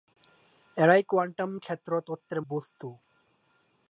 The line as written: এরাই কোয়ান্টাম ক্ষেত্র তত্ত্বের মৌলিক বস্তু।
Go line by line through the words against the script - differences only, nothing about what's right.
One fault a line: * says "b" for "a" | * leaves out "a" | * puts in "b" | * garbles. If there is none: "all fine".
* leaves out "মৌলিক"